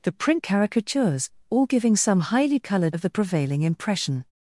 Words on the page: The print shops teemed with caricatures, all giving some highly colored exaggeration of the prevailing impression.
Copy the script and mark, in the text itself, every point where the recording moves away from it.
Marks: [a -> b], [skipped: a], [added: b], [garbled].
The print [skipped: shops teemed with] caricatures, all giving some highly colored [skipped: exaggeration] of the prevailing impression.